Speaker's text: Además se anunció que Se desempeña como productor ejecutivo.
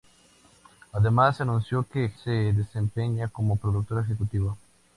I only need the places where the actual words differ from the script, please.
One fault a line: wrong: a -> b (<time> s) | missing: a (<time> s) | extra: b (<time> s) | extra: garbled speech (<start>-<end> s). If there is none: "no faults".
no faults